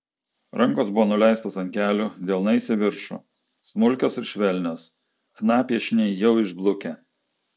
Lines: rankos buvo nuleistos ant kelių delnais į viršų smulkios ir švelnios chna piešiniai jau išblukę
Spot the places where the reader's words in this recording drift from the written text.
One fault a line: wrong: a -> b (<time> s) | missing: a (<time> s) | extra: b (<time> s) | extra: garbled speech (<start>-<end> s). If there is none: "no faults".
no faults